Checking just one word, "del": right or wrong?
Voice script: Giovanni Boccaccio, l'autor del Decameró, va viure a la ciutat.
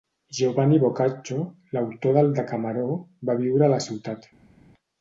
right